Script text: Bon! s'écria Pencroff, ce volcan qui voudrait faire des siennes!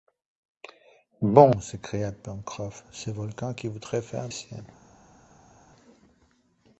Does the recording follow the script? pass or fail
fail